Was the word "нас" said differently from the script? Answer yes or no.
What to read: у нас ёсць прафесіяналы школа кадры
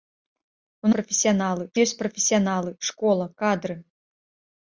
yes